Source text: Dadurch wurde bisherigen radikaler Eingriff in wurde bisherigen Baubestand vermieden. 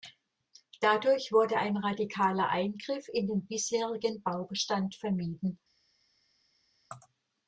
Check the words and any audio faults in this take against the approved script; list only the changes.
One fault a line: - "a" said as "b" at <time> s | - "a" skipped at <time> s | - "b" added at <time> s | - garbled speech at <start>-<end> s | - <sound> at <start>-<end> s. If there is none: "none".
- "bisherigen" said as "ein" at 1.6 s
- "wurde" said as "den" at 3.3 s